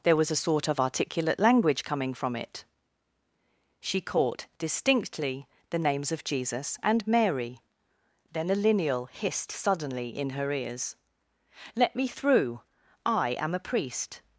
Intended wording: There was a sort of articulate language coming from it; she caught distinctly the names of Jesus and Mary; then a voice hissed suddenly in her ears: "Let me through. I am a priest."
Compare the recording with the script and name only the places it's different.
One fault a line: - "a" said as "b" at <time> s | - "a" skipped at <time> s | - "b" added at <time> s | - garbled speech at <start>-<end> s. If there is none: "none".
- "voice" said as "lineal" at 8.6 s